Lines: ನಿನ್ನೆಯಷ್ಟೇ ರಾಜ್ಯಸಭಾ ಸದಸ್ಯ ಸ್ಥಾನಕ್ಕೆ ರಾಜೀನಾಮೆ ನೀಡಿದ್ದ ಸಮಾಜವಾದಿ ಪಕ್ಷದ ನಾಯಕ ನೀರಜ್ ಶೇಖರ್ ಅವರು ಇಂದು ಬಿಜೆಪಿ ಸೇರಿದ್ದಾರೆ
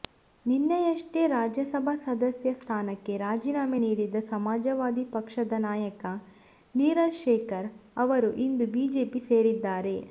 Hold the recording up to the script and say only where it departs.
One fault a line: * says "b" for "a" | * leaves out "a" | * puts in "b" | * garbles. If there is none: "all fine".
all fine